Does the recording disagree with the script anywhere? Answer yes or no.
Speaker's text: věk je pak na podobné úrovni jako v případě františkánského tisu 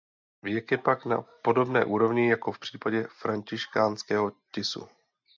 no